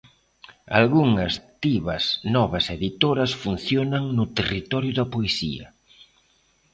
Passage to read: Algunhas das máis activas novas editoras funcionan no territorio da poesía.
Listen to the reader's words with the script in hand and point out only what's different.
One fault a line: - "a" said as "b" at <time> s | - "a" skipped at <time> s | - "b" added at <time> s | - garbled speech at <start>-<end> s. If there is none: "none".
- "das máis" skipped at 1.3 s